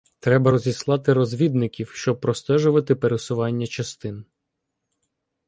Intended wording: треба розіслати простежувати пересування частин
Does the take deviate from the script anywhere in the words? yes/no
yes